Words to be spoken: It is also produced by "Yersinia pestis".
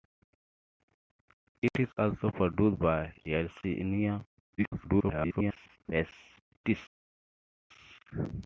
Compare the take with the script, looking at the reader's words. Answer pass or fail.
fail